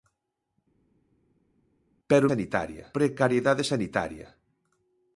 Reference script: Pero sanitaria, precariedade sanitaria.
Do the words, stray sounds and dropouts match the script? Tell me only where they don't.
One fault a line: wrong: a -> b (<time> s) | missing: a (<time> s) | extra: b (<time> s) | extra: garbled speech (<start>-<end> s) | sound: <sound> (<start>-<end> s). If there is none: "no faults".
no faults